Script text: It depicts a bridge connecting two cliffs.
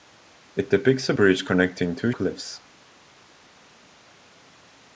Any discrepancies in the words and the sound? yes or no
no